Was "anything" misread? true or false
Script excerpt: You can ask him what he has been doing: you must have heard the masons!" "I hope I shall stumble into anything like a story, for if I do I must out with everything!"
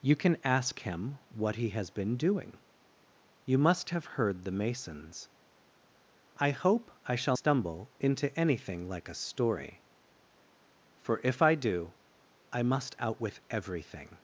false